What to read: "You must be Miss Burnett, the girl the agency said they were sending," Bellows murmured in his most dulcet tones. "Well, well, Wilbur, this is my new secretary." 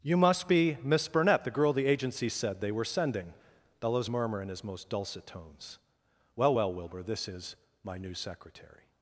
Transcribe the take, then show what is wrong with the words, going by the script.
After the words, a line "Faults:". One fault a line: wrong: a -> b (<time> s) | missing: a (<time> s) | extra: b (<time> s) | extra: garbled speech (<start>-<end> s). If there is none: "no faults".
"You must be Miss Burnett, the girl the agency said they were sending," Bellows murmur in his most dulcet tones. "Well, well, Wilbur, this is my new secretary."
Faults:
wrong: murmured -> murmur (4.1 s)